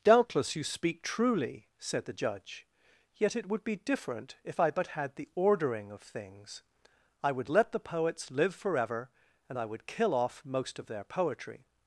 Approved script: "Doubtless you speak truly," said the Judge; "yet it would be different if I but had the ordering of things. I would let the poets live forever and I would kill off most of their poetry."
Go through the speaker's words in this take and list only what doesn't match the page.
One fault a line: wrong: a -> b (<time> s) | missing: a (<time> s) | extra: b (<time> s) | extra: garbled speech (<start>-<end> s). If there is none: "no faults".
no faults